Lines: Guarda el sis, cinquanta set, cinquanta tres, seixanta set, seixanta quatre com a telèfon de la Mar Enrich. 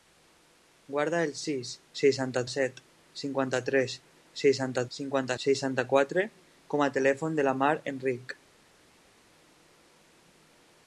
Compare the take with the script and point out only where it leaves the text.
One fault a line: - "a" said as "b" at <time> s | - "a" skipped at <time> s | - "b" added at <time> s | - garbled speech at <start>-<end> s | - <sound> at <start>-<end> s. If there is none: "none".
- "cinquanta" said as "seixanta" at 2.0 s
- "set" said as "cinquanta" at 5.0 s